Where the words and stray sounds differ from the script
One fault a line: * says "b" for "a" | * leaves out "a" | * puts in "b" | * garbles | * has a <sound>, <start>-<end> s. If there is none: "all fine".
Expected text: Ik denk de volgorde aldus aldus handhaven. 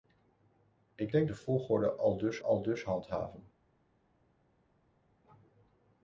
all fine